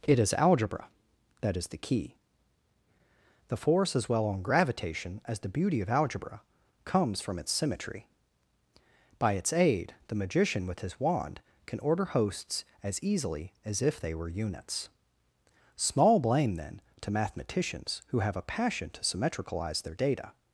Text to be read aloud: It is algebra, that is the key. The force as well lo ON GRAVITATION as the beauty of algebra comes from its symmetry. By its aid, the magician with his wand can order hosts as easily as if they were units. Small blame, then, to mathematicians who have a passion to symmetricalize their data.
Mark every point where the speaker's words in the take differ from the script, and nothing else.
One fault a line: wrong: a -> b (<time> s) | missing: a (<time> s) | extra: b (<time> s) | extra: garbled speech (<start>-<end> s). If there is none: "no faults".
missing: lo (4.2 s)